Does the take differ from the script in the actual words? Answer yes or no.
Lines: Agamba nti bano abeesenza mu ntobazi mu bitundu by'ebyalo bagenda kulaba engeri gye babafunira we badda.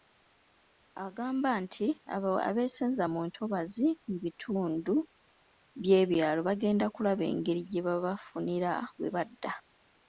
yes